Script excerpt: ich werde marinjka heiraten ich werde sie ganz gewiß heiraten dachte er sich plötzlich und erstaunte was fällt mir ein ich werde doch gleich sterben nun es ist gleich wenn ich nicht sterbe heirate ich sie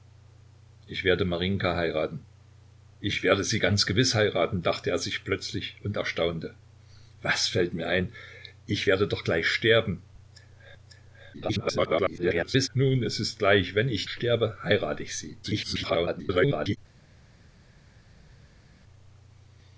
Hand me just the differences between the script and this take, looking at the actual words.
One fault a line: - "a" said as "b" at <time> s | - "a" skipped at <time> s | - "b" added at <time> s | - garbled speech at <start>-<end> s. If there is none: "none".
- garbled speech at 11.3-12.7 s
- "nicht" skipped at 14.1 s
- garbled speech at 15.4-16.8 s